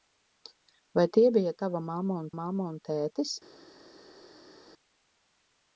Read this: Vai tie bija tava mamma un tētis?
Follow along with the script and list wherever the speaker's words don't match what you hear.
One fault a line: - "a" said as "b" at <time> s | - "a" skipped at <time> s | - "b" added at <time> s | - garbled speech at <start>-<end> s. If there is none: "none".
- "mamma un" added at 2.4 s